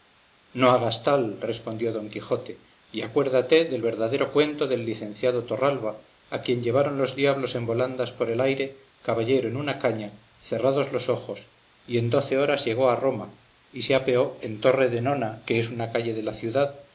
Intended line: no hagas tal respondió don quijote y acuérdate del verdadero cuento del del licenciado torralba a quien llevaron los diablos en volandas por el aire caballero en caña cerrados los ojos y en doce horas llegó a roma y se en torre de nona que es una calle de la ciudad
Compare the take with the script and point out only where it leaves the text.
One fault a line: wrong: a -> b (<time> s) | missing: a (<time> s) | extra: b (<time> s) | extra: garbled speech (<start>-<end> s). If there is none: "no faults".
missing: del (4.8 s)
extra: una (9.6 s)
extra: apeó (13.9 s)